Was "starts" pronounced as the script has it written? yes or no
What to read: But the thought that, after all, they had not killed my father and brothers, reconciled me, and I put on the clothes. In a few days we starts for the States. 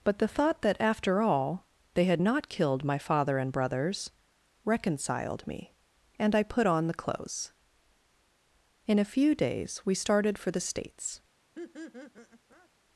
no